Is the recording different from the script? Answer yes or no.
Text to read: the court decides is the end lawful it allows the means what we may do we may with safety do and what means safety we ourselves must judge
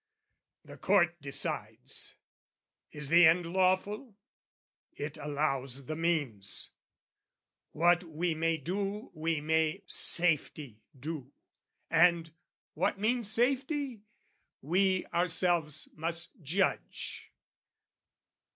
yes